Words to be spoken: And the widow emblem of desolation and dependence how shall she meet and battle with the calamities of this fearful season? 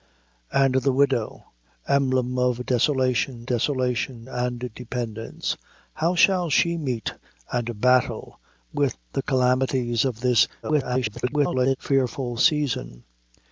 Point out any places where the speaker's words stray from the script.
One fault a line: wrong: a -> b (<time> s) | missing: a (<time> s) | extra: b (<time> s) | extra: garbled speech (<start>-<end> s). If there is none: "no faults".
extra: desolation (3.4 s)
extra: garbled speech (10.6-11.8 s)